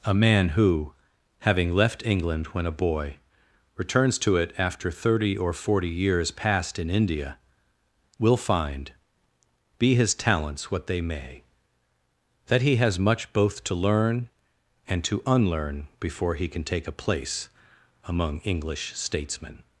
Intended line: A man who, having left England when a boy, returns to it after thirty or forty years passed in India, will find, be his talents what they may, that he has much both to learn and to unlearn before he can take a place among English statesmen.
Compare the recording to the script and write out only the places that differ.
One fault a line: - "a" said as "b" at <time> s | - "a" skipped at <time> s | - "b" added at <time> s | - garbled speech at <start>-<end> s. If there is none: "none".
none